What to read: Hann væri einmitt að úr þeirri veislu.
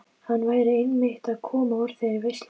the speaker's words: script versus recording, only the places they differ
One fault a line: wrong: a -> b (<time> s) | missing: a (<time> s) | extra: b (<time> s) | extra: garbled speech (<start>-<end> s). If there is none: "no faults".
extra: koma (1.5 s)